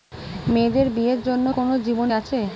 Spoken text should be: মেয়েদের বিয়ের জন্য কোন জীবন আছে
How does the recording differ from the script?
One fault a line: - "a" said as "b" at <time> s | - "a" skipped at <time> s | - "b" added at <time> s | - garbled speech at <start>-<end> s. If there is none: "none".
none